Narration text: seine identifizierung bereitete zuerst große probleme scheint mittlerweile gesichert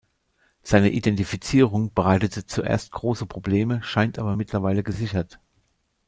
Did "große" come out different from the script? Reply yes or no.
no